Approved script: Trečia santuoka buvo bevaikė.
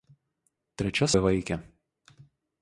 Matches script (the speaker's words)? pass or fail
fail